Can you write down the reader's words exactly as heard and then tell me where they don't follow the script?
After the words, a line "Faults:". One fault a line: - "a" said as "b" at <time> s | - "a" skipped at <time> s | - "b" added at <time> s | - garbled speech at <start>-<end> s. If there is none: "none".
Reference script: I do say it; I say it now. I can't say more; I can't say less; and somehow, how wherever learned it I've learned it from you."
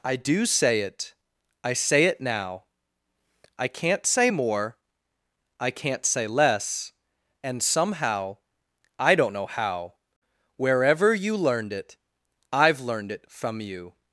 I do say it; I say it now. I can't say more; I can't say less; and somehow, I don't know how wherever you learned it I've learned it from you."
Faults:
- "I don't know" added at 9.0 s
- "you" added at 11.1 s